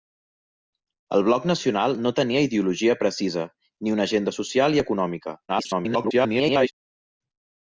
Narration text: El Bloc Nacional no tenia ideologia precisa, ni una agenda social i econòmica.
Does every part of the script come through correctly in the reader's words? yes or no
no